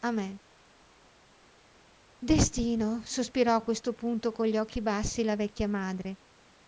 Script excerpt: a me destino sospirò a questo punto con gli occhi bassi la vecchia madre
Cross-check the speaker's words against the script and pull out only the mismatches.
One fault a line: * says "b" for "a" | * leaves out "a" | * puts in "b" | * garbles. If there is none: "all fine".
all fine